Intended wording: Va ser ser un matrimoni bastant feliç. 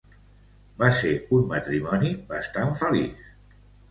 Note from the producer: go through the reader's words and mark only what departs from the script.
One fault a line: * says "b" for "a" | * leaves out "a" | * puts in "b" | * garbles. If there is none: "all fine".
* leaves out "ser"